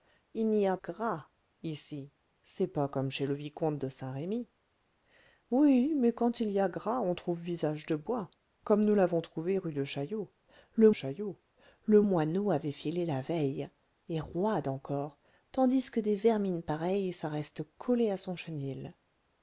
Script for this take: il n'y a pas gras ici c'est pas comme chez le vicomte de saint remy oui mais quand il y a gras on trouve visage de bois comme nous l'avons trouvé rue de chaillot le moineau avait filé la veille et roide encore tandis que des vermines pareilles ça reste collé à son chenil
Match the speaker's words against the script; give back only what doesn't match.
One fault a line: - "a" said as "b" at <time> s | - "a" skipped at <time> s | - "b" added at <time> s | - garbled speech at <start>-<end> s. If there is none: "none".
- "pas" skipped at 0.8 s
- "chaillot le" added at 10.9 s